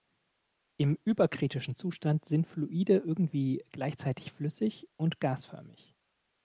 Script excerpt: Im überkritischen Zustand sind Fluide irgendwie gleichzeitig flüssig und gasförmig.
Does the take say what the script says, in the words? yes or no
yes